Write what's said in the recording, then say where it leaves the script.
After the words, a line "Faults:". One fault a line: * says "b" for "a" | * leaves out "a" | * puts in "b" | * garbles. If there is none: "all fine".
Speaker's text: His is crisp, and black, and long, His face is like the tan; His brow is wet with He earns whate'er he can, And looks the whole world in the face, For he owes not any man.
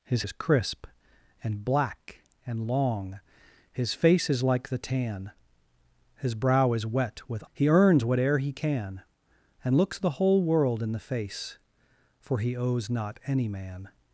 His is crisp, and black, and long, His face is like the tan; His brow is wet with He earns whate'er he can, And looks the whole world in the face, For he owes not any man.
Faults:
all fine